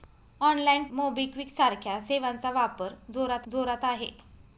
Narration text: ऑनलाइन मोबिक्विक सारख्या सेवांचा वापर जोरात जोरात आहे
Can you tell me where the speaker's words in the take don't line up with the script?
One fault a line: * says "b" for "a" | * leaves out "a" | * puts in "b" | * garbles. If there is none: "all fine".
all fine